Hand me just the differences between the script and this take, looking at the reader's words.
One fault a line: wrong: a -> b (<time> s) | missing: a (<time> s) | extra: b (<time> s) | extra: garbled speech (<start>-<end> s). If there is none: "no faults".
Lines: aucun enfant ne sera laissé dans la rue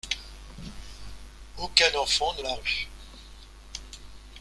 missing: sera laissé dans (2.4 s)